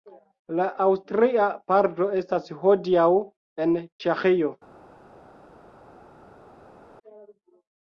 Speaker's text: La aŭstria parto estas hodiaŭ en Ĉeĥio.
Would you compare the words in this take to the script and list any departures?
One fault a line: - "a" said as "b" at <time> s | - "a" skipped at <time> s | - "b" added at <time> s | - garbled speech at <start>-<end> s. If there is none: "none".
none